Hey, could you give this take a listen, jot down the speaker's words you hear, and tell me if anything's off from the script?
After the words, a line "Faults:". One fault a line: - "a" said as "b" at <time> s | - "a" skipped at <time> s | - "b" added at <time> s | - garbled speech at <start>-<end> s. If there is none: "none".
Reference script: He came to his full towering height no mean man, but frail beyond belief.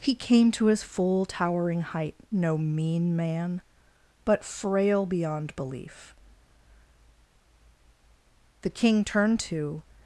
He came to his full towering height no mean man, but frail beyond belief. 'The King turned to
Faults:
- "The King turned to" added at 8.6 s